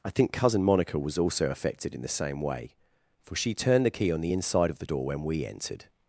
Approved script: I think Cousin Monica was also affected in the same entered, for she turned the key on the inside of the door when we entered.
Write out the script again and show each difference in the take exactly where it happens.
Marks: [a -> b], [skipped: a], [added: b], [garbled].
I think Cousin Monica was also affected in the same [entered, -> way] for she turned the key on the inside of the door when we entered.